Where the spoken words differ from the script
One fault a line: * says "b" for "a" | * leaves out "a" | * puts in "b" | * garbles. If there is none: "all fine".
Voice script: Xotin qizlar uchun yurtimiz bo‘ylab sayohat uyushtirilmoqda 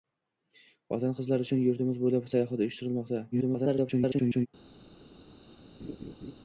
* garbles